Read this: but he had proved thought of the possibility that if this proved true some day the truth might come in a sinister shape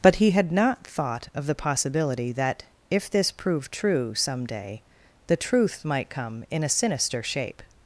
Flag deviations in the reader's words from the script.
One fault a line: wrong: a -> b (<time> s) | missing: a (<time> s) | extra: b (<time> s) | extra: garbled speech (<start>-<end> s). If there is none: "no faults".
wrong: proved -> not (0.5 s)